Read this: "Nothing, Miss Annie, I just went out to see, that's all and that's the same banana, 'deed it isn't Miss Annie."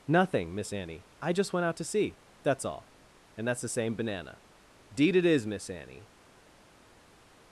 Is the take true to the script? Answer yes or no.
no